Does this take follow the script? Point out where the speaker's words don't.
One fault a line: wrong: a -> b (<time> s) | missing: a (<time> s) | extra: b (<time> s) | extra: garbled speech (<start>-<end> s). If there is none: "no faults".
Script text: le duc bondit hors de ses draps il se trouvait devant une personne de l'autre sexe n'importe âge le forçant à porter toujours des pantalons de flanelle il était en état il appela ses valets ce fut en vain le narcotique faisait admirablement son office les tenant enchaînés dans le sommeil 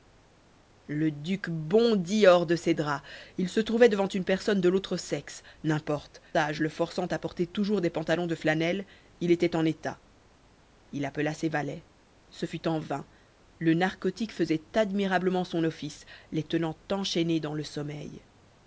no faults